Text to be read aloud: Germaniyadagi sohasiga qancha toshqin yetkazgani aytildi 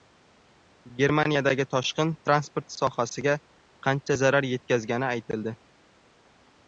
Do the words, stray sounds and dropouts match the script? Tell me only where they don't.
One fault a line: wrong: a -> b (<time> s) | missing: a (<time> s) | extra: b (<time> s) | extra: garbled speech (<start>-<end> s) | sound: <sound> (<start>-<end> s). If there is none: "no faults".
extra: toshqin transport (1.7 s)
wrong: toshqin -> zarar (4.2 s)